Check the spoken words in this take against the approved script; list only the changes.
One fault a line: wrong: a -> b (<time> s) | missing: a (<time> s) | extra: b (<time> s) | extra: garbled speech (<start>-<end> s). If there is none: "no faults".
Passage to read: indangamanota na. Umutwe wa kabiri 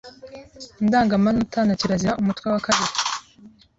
extra: kirazira (1.8 s)